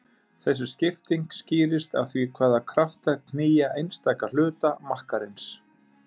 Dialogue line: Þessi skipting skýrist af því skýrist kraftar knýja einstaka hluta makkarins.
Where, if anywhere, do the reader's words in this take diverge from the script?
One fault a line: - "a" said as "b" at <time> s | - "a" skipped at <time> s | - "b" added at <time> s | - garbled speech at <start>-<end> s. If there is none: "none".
- "skýrist" said as "hvaða" at 2.4 s